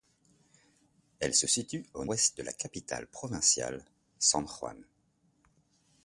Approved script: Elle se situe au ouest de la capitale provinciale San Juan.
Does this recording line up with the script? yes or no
yes